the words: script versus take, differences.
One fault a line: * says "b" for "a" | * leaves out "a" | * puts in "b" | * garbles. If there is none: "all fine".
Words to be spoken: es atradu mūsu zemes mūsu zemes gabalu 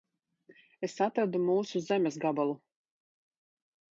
* leaves out "mūsu zemes"